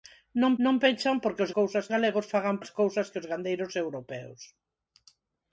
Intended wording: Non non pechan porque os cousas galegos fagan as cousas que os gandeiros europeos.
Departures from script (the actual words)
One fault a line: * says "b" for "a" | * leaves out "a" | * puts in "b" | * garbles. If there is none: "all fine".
all fine